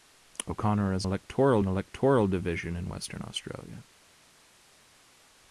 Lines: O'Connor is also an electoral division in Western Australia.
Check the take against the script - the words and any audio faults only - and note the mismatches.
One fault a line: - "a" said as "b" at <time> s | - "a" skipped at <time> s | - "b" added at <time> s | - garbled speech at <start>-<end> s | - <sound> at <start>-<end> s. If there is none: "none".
- "also" said as "electoral" at 1.0 s